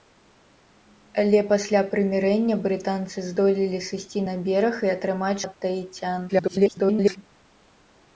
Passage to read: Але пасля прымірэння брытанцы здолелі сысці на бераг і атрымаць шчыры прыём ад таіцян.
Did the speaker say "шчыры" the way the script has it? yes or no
no